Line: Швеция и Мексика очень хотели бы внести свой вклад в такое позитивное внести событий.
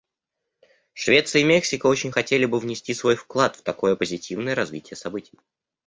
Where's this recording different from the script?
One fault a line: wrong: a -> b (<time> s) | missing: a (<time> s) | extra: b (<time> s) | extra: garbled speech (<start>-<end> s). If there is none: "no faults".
wrong: внести -> развитие (4.5 s)